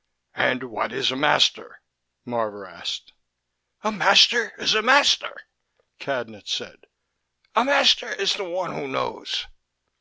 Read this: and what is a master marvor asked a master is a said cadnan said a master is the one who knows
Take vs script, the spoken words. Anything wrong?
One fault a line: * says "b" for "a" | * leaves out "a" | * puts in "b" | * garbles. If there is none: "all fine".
* says "master" for "said"